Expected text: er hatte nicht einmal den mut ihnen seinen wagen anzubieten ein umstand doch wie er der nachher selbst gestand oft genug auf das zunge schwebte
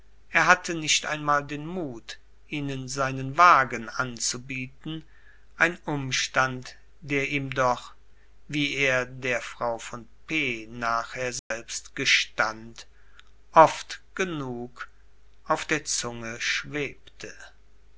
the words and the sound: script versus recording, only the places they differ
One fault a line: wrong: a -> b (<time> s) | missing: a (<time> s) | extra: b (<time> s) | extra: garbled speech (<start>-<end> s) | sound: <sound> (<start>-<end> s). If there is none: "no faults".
extra: der ihm (7.0 s)
extra: frau von p (9.4 s)
sound: dropout (11.4-11.5 s)
wrong: das -> der (15.7 s)